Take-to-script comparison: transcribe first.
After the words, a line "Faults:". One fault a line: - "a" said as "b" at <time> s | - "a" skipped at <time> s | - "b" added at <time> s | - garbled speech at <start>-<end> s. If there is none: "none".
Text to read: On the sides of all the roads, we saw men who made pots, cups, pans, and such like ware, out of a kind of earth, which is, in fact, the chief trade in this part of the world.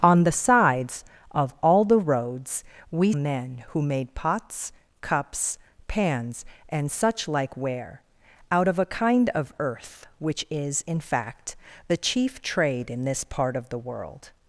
On the sides of all the roads, we men who made pots, cups, pans, and such like ware, out of a kind of earth, which is, in fact, the chief trade in this part of the world.
Faults:
- "saw" skipped at 3.1 s